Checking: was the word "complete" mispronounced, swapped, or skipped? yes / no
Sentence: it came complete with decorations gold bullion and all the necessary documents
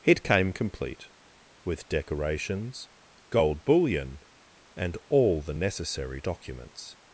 no